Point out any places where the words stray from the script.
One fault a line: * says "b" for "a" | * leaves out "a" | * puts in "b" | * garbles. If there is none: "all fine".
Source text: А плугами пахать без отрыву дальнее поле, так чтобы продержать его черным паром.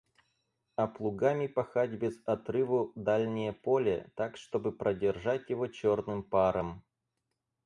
all fine